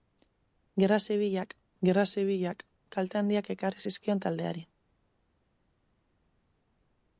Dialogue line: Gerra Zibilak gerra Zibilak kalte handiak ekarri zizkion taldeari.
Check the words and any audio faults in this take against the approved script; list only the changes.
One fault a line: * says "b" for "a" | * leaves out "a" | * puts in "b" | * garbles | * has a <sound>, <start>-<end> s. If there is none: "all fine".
all fine